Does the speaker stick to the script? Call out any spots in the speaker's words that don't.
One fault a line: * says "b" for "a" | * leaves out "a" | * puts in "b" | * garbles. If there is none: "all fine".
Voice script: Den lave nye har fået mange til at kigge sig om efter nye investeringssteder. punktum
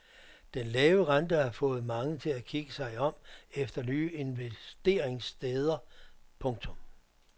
* says "rente" for "nye"